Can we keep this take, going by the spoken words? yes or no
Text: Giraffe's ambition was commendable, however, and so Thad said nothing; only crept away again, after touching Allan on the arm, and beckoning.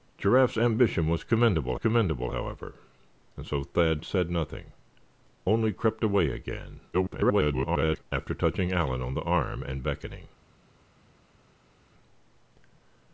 no